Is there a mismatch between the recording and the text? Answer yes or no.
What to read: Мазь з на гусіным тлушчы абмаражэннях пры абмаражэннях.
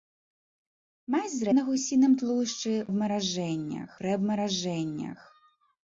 no